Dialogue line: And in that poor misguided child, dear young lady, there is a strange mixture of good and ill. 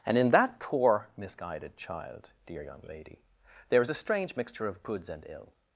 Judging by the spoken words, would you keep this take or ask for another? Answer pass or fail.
fail